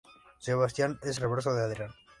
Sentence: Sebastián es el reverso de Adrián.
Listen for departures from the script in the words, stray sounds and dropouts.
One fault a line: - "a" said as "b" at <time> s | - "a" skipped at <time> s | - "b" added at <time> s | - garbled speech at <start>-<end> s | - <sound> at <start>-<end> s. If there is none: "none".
- "el" skipped at 1.2 s